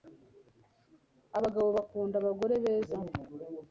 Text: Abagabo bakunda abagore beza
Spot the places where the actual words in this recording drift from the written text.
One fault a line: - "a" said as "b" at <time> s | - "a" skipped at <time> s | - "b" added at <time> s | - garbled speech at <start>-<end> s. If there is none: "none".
none